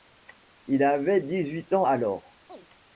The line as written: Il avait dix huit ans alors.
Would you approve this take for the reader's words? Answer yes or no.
yes